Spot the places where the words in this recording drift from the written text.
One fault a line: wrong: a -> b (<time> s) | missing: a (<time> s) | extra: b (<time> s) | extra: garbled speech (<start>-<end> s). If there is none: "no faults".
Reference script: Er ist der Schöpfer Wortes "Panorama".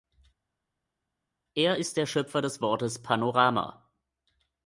extra: des (2.4 s)